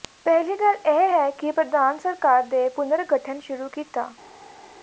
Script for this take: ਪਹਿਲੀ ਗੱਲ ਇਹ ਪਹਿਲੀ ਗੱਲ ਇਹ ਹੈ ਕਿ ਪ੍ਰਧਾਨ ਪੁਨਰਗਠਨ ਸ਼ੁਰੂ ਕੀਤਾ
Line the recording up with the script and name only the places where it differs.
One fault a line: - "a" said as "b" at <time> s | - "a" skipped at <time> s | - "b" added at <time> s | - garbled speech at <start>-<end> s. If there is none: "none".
- "ਪਹਿਲੀ ਗੱਲ ਇਹ" skipped at 1.1 s
- "ਸਰਕਾਰ ਦੇ" added at 2.0 s